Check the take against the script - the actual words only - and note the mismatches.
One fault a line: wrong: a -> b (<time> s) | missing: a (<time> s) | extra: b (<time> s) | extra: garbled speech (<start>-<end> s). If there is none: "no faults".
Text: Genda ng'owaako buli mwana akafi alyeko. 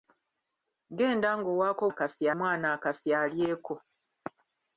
wrong: buli -> akafi (1.9 s)